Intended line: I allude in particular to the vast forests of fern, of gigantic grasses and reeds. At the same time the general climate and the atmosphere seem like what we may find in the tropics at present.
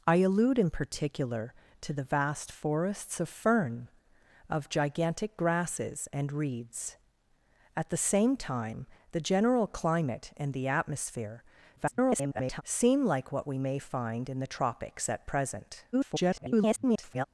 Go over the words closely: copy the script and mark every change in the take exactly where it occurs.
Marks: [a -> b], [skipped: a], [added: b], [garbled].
I allude in particular to the vast forests of fern, of gigantic grasses and reeds. At the same time the general climate and the atmosphere [garbled] seem like what we may find in the tropics at present. [garbled]